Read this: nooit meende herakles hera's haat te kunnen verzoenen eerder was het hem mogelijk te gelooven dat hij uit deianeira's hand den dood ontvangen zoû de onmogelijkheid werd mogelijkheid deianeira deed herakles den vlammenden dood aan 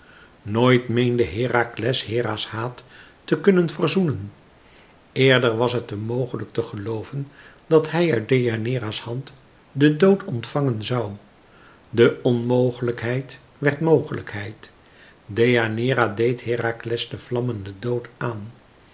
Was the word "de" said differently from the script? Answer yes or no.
no